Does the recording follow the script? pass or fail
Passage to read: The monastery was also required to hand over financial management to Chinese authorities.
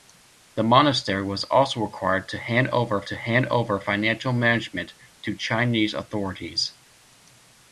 fail